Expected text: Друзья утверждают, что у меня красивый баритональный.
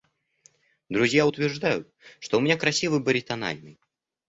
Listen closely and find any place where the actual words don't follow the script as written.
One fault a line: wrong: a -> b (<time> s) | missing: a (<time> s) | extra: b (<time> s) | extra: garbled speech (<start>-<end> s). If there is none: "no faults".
no faults